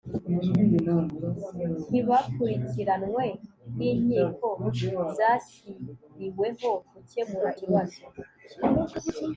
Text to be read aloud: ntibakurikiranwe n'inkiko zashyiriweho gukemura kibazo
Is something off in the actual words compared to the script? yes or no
no